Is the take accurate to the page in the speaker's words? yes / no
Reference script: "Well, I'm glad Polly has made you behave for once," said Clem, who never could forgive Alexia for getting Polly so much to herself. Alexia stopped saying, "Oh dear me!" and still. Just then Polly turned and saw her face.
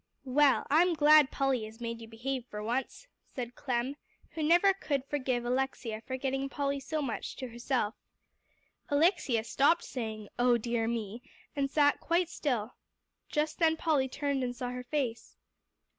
no